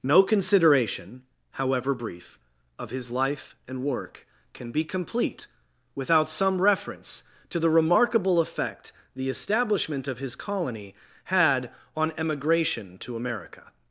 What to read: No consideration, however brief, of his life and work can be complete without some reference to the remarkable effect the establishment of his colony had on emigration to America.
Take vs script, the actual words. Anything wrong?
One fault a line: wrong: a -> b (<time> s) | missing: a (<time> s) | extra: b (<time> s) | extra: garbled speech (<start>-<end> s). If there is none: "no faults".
no faults